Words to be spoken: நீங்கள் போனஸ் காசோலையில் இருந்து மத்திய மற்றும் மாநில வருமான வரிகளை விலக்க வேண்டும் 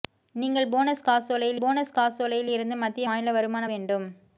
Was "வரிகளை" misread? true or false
true